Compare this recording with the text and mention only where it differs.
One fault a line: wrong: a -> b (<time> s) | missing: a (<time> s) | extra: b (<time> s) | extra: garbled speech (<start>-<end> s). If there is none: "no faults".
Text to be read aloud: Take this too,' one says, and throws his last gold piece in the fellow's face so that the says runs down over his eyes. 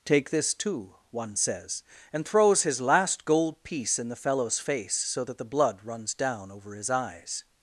wrong: says -> blood (5.4 s)